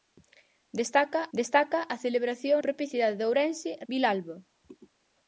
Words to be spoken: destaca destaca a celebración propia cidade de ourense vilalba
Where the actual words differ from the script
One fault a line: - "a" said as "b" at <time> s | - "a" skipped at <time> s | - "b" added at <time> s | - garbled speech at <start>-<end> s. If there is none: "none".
none